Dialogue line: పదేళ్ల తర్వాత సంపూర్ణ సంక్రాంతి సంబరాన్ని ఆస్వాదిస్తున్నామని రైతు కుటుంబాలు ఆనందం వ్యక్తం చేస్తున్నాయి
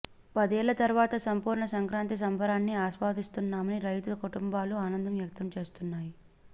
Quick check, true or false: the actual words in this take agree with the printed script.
true